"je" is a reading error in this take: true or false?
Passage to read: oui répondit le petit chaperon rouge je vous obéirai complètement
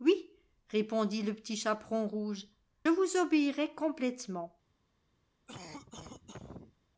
true